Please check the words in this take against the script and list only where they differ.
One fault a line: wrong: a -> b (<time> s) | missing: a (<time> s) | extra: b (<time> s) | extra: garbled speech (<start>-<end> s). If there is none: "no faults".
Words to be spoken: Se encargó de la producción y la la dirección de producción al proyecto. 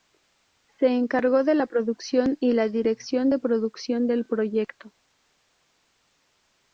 missing: la (2.7 s)
wrong: al -> del (4.1 s)